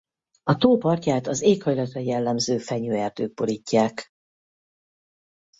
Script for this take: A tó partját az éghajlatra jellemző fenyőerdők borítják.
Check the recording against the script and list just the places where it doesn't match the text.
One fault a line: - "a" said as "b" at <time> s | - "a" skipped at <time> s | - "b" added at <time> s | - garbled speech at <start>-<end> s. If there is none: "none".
none